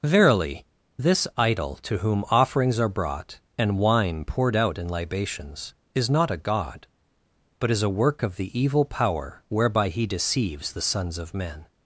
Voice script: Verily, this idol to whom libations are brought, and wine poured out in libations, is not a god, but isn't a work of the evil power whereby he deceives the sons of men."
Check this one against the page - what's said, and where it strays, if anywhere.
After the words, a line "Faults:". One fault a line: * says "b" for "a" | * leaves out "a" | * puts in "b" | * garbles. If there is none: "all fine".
Verily, this idol to whom offerings are brought, and wine poured out in libations, is not a god, but is a work of the evil power whereby he deceives the sons of men."
Faults:
* says "offerings" for "libations"
* says "is" for "isn't"